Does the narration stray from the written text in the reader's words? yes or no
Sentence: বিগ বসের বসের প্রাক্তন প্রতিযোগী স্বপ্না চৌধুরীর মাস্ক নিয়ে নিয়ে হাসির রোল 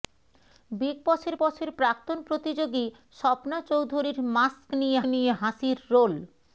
no